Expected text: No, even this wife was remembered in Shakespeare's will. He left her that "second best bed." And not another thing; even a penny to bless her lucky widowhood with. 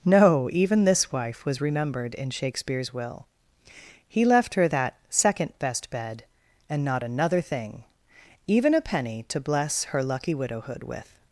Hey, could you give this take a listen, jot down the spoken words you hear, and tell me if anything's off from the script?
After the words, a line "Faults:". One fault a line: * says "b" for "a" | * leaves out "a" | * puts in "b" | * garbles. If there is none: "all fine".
No, even this wife was remembered in Shakespeare's will. He left her that "second best bed." And not another thing; even a penny to bless her lucky widowhood with.
Faults:
all fine